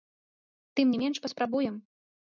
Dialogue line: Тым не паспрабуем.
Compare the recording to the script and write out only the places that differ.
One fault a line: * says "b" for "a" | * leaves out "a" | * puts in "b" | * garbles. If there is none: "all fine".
* puts in "менш"